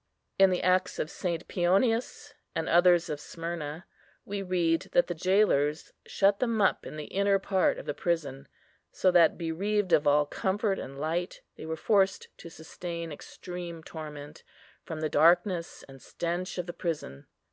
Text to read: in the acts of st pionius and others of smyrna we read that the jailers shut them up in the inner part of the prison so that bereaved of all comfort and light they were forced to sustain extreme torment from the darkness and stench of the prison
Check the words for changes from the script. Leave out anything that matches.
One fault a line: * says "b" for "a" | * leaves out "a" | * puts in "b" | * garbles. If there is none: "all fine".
all fine